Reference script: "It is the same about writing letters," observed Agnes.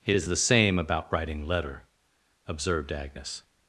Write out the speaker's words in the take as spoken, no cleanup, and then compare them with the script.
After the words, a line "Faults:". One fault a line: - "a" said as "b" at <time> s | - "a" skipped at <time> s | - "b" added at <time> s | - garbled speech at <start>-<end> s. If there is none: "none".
"It is the same about writing letter," observed Agnes.
Faults:
- "letters" said as "letter" at 1.5 s